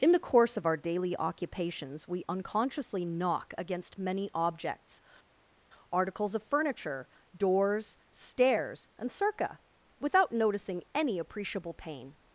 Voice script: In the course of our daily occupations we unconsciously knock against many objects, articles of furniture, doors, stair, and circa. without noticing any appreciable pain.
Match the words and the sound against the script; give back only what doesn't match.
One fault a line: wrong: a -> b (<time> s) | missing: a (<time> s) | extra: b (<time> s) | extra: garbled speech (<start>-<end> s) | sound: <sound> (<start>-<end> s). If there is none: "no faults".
wrong: stair -> stairs (8.1 s)